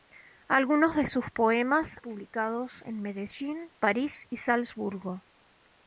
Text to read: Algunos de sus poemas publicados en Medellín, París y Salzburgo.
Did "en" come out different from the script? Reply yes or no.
no